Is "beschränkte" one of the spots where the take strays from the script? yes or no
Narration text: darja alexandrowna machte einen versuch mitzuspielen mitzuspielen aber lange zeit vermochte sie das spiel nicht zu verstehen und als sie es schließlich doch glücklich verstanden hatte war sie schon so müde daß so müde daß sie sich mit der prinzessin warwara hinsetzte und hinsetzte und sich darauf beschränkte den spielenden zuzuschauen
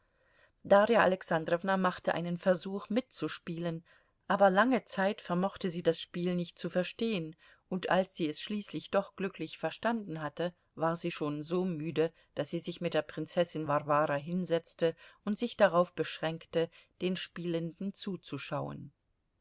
no